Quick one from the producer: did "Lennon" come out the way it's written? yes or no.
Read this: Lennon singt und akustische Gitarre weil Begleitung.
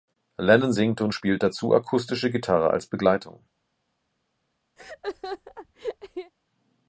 yes